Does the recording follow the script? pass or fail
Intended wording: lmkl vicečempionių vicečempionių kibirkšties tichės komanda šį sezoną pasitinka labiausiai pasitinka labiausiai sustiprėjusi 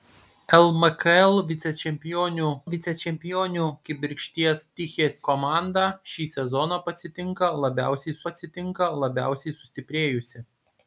pass